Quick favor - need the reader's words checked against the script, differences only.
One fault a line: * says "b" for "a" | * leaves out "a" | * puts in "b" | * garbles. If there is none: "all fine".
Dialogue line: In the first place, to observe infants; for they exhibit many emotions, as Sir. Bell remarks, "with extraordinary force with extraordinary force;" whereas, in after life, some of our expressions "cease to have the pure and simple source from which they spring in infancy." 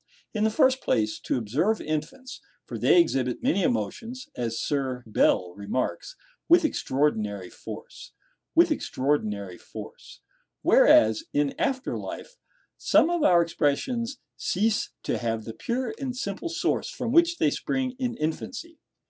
all fine